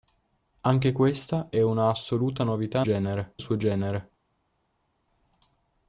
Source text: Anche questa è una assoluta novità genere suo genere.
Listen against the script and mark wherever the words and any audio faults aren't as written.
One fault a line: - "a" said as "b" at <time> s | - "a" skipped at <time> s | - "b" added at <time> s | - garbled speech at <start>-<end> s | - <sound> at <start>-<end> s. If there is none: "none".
none